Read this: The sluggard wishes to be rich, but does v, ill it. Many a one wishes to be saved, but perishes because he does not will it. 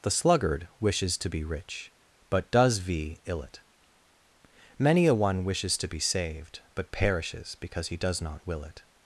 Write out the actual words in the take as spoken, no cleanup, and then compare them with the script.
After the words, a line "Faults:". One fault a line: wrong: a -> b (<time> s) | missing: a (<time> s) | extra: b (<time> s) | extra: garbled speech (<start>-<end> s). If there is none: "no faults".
The sluggard wishes to be rich, but does v, ill it. Many a one wishes to be saved, but perishes because he does not will it.
Faults:
no faults